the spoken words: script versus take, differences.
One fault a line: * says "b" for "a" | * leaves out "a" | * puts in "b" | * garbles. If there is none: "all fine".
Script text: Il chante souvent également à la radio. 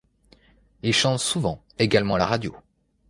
all fine